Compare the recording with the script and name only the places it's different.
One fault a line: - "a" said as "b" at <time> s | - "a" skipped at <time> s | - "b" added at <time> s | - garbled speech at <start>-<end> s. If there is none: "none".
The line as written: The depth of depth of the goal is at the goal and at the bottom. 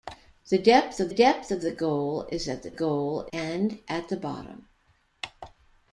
none